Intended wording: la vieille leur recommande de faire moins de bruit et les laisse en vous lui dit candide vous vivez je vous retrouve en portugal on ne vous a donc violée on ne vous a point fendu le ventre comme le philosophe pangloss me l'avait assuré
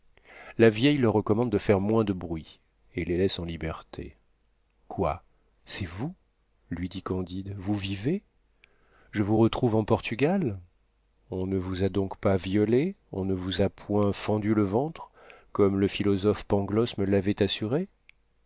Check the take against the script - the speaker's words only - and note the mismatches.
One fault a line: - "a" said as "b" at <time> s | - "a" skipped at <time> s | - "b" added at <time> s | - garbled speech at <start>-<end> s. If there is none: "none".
- "liberté quoi c'est" added at 3.4 s
- "pas" added at 12.2 s